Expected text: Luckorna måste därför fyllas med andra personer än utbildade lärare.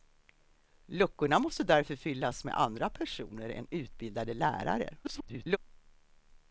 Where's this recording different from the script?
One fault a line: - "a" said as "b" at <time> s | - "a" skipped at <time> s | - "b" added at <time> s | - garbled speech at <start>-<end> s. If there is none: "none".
- garbled speech at 5.0-5.6 s